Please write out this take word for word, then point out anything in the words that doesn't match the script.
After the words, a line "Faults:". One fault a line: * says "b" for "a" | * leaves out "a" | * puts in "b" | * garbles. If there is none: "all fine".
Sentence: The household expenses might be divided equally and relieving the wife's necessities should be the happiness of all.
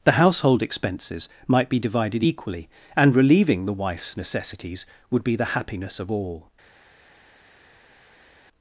The household expenses might be divided equally and relieving the wife's necessities would be the happiness of all.
Faults:
* says "would" for "should"